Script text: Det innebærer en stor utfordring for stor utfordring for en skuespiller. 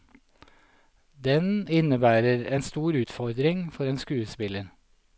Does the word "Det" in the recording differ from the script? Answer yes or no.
yes